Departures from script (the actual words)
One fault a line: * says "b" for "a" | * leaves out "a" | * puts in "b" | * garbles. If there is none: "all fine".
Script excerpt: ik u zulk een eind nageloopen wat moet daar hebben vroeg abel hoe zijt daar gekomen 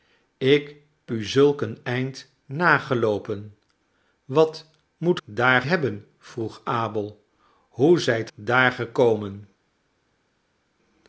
all fine